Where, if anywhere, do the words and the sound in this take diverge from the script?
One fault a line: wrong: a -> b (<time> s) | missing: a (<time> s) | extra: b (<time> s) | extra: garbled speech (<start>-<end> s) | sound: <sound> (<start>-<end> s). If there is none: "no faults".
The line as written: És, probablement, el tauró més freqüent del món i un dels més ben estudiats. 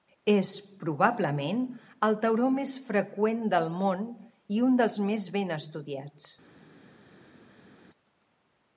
no faults